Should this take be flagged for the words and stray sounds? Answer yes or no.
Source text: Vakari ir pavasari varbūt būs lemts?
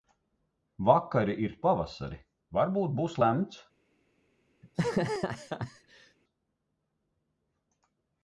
yes